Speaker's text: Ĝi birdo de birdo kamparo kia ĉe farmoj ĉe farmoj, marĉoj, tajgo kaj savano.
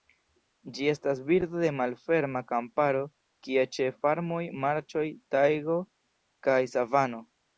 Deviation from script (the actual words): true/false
true